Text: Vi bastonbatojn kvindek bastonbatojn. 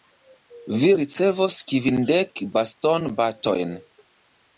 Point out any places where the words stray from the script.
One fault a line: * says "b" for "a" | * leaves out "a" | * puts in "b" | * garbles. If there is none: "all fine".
* says "ricevos" for "bastonbatojn"